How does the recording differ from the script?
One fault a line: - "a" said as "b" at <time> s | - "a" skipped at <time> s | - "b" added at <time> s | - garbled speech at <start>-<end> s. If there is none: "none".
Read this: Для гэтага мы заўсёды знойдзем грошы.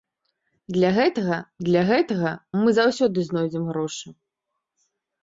- "для гэтага" added at 1.7 s